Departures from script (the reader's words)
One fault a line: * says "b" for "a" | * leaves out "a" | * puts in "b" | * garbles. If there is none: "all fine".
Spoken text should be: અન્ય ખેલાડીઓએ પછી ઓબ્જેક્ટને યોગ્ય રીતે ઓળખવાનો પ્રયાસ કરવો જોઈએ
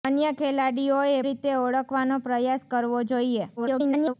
* leaves out "પછી ઓબ્જેક્ટને યોગ્ય"
* garbles